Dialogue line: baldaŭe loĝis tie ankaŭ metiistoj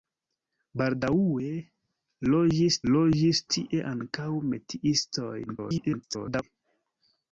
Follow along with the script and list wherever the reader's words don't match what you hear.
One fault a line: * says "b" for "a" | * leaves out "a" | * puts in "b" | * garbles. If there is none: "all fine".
* puts in "loĝis"
* garbles